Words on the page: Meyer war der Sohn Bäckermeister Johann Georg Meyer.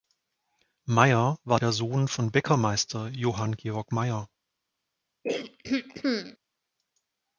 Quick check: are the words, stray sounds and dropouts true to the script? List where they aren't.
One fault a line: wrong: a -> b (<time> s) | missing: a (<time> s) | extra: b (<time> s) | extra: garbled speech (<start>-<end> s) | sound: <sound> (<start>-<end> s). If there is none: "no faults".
extra: von (2.1 s)
sound: throat clearing (5.2-6.4 s)